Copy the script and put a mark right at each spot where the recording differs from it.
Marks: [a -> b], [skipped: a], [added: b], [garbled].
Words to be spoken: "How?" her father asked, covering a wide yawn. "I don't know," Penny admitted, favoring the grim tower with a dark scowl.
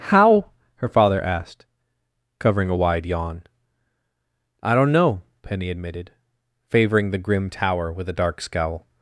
"How?" her father asked, covering a wide yawn. "I don't know," Penny admitted, favoring the grim tower with a dark scowl.